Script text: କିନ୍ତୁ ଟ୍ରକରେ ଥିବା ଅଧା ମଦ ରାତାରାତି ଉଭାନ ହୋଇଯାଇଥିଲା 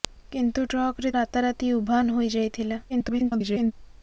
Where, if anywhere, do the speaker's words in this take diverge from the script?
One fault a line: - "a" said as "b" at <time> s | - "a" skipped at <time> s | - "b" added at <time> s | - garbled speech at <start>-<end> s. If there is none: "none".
- "ଥିବା ଅଧା ମଦ" skipped at 1.1 s
- garbled speech at 2.9-3.7 s